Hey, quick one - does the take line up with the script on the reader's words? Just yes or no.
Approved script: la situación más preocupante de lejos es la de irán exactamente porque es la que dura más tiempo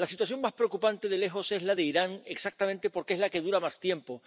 yes